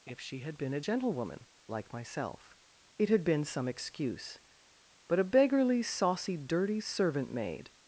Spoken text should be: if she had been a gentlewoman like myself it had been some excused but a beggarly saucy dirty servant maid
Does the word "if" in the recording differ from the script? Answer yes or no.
no